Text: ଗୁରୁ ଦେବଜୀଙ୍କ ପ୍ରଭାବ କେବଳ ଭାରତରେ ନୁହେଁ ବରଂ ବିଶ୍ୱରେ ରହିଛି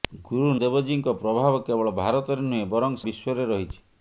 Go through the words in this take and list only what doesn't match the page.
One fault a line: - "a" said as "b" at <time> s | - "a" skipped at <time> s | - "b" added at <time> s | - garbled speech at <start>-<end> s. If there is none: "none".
none